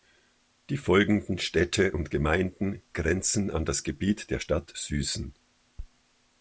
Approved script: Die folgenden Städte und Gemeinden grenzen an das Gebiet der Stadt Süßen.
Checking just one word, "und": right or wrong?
right